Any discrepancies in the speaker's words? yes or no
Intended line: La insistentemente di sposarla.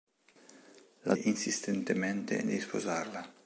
no